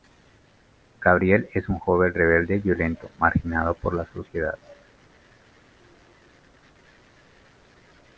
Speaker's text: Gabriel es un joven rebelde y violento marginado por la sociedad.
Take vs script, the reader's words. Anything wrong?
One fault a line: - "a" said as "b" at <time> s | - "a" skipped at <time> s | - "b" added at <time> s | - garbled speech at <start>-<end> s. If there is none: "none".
none